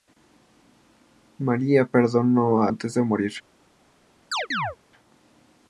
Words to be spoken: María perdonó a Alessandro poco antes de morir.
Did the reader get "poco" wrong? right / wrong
wrong